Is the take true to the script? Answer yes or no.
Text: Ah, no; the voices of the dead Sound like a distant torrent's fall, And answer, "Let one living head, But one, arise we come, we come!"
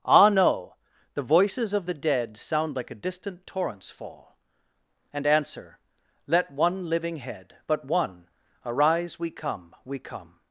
yes